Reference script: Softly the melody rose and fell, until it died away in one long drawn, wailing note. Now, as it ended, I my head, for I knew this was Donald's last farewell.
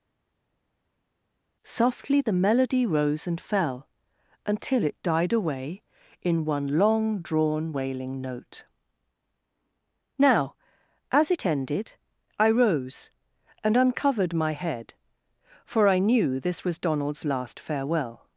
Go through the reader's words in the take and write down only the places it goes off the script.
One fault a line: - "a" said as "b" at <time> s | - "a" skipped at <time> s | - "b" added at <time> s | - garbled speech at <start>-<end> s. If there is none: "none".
- "rose and uncovered" added at 12.5 s